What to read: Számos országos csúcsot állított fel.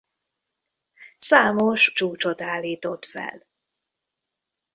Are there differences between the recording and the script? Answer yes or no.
yes